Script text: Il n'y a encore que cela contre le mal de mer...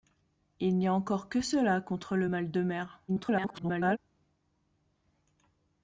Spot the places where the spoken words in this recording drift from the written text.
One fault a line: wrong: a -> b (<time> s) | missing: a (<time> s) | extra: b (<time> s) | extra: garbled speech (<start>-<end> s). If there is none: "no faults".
extra: garbled speech (3.1-4.0 s)